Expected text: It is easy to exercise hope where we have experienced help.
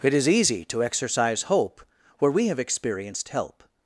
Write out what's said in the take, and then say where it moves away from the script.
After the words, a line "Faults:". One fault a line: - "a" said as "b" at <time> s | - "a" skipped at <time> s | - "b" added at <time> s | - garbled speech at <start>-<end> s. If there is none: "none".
It is easy to exercise hope where we have experienced help.
Faults:
none